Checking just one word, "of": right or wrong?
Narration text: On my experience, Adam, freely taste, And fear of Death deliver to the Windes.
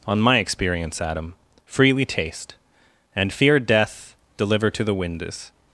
wrong